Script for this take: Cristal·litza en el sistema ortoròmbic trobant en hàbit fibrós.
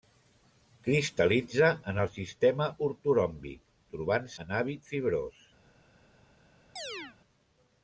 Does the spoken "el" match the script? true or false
true